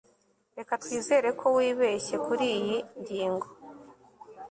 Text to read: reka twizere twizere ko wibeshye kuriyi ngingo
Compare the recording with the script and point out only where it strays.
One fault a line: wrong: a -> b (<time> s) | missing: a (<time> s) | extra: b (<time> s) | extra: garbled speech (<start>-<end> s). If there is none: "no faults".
missing: twizere (1.3 s)